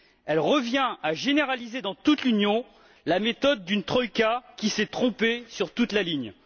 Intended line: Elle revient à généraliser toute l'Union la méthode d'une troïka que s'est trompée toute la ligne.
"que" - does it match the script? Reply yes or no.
no